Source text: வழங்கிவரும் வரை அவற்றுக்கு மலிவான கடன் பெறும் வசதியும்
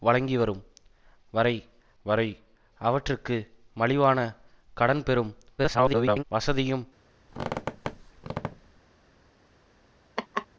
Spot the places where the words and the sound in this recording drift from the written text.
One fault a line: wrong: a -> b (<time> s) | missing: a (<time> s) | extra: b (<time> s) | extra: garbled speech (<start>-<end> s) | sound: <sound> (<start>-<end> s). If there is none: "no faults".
extra: வரை (2.1 s)
extra: garbled speech (5.6-6.2 s)
sound: squeak (7.3-8.8 s)
sound: laugh (10.2-10.5 s)